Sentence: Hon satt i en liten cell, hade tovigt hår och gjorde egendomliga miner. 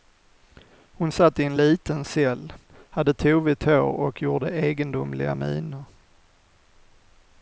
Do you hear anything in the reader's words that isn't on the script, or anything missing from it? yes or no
no